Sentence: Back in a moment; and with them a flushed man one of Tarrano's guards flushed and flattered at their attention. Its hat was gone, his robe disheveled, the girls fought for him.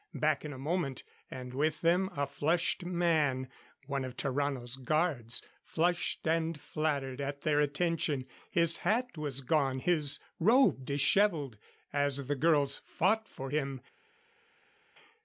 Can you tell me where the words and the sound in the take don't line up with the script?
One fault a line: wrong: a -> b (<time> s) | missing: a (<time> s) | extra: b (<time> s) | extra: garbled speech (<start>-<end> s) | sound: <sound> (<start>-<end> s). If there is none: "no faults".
wrong: Its -> His (8.5 s)
extra: as (11.9 s)